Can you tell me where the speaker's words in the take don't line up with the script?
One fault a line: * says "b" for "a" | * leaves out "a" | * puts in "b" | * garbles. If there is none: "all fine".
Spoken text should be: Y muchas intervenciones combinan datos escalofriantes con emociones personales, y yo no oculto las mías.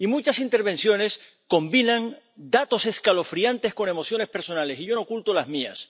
all fine